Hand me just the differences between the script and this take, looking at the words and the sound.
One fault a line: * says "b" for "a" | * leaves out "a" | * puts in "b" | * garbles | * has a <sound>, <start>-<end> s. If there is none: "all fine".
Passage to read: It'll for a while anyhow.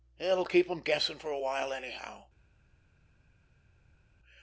* puts in "keep em guessing"